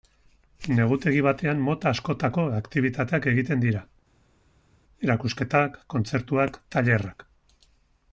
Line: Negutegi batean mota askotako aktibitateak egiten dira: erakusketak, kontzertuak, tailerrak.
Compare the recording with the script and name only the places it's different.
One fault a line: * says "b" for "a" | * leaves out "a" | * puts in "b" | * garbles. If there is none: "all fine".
all fine